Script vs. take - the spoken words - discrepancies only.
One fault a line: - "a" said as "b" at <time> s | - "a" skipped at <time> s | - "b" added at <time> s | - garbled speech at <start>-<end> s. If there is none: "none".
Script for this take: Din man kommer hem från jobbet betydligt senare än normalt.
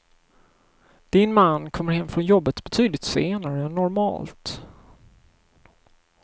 none